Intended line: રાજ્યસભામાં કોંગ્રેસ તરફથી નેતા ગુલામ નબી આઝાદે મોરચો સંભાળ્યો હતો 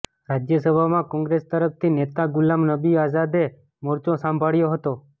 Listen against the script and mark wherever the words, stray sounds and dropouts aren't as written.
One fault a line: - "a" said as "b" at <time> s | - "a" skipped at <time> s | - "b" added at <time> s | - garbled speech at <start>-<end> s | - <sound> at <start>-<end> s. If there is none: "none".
none